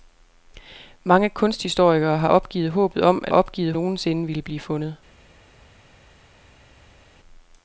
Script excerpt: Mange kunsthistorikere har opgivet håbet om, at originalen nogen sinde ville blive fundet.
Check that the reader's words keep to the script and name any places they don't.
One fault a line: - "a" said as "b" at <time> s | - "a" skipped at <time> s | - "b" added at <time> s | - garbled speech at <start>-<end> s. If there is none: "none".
- "originalen" said as "opgivet" at 3.3 s